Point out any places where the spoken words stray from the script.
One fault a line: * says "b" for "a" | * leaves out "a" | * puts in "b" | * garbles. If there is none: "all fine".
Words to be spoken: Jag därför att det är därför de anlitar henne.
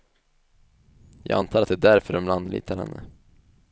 * says "antar" for "därför"